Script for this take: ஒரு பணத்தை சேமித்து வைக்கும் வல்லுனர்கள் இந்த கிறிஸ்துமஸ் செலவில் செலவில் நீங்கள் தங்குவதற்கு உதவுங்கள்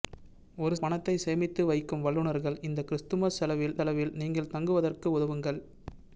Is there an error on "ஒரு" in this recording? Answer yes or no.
no